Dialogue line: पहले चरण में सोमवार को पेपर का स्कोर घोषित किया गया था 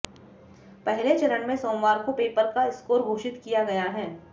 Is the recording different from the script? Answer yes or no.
yes